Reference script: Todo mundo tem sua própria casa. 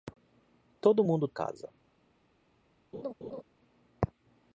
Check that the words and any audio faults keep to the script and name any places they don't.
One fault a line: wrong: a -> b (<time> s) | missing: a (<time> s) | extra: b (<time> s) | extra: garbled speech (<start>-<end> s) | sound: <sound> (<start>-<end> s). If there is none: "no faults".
missing: tem sua própria (1.3 s)
sound: laugh (2.9-3.4 s)